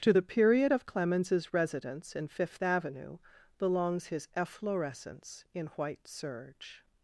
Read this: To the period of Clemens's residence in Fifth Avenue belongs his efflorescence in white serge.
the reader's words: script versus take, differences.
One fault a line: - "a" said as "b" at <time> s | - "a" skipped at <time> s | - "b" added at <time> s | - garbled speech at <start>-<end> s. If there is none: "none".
none